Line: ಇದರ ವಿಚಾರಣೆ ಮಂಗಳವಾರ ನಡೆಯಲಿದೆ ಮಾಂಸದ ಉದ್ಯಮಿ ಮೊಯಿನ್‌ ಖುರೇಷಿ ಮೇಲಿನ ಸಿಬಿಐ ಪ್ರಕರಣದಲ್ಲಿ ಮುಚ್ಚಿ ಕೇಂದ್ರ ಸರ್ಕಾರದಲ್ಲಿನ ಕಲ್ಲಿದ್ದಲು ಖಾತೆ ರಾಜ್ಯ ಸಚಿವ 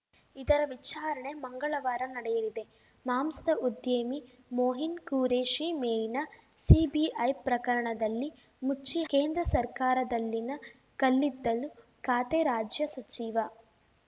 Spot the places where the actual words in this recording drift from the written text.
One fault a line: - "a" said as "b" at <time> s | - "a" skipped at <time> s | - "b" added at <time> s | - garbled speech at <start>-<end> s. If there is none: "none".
none